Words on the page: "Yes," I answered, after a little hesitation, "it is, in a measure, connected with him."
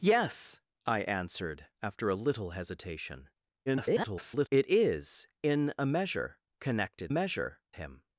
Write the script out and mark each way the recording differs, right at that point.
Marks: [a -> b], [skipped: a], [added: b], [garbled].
"Yes," I answered, after a little hesitation, [garbled] "it is, in a measure, connected [with -> measure] him."